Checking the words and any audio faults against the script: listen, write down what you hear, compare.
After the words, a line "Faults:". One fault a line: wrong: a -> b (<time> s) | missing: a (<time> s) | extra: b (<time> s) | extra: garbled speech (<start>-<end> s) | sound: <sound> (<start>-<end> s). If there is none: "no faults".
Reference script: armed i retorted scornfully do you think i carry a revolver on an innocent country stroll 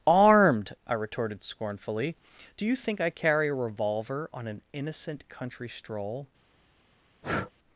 armed i retorted scornfully do you think i carry a revolver on an innocent country stroll
Faults:
sound: breath (7.2-7.5 s)